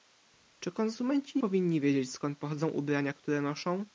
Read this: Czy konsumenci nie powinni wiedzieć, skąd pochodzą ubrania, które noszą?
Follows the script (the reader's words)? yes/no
no